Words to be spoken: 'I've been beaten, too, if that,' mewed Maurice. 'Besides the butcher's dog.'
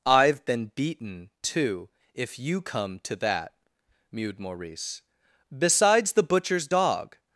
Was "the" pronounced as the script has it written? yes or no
yes